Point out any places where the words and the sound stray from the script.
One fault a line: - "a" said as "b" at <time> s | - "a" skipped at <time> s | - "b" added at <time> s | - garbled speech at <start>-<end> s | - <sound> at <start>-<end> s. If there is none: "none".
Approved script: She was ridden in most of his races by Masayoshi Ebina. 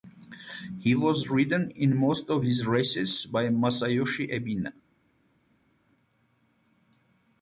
- "She" said as "He" at 0.8 s